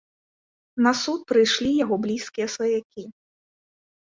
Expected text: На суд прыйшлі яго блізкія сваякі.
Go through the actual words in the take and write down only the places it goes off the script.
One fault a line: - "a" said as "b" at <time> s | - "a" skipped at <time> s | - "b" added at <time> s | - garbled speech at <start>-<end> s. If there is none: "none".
none